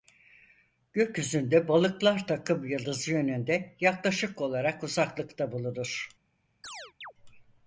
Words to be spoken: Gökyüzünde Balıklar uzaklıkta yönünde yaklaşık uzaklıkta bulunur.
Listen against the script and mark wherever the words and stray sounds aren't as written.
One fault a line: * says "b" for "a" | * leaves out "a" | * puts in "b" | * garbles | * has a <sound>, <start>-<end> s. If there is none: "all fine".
* says "takımyıldızı" for "uzaklıkta"
* puts in "olarak"
* has a chirp, 6.6-7.1 s